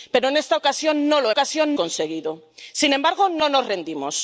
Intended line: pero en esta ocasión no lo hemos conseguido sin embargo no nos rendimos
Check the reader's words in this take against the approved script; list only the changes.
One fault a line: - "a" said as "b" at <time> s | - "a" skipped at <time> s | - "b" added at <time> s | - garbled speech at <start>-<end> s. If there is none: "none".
- "hemos" said as "ocasión" at 1.3 s